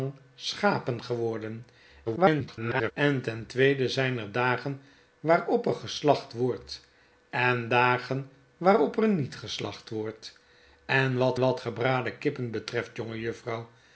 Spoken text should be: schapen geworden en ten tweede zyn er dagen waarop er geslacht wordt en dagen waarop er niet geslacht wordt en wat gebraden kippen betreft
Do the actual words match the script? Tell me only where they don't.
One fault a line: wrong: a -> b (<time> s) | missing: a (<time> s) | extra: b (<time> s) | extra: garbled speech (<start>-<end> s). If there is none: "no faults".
extra: garbled speech (2.0-2.9 s)
extra: wat (11.4 s)